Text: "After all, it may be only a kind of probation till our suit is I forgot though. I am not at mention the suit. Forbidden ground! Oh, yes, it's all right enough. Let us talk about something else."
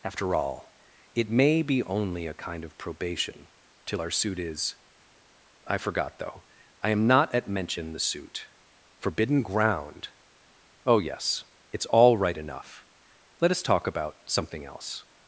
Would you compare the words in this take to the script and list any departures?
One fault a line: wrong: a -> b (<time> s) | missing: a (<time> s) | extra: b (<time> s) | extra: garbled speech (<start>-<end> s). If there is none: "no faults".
no faults